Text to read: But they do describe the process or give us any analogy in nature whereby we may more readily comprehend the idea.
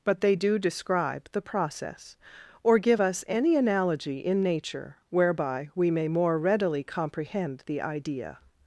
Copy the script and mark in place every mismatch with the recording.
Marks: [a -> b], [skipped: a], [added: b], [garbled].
But they do describe the process or give us any analogy in nature whereby we may more readily comprehend the idea.